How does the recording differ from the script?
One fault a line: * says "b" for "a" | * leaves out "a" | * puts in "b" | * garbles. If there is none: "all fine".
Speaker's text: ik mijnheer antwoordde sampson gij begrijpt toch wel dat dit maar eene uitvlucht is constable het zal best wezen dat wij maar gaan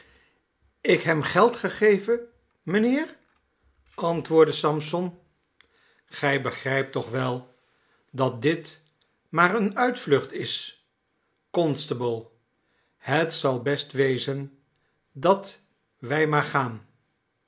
* puts in "hem geld gegeven"